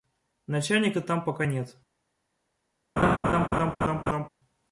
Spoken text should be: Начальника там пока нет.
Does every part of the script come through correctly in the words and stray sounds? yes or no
no